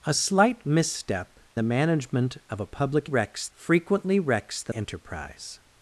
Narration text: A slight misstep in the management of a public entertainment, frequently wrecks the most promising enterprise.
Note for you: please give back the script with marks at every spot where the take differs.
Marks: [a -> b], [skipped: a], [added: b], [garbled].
A slight misstep [skipped: in] the management of a public [entertainment, -> wrecks] frequently wrecks the [skipped: most promising] enterprise.